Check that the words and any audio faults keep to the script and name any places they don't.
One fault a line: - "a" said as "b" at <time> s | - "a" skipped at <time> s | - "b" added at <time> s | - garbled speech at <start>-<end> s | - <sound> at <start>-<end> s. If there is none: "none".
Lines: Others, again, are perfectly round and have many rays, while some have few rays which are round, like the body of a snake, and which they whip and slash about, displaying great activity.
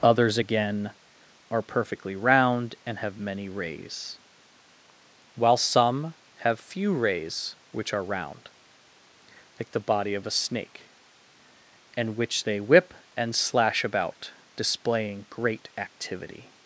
none